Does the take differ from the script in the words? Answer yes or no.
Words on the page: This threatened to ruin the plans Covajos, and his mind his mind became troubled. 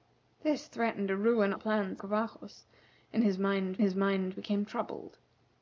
no